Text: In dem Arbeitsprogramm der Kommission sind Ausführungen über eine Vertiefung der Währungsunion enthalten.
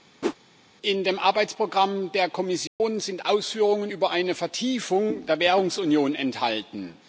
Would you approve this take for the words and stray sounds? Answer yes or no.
no